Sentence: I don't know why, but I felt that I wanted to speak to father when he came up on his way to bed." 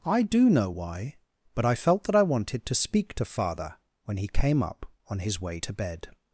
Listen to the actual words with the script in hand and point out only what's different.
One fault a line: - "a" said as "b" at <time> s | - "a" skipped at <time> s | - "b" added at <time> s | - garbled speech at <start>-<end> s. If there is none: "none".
- "don't" said as "do" at 0.2 s